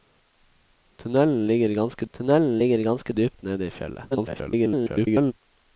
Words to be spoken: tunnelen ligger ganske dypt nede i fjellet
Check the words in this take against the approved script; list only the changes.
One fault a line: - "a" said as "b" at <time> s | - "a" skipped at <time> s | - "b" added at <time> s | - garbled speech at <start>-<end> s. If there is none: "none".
- "tunnelen ligger ganske" added at 2.1 s
- garbled speech at 4.1-5.3 s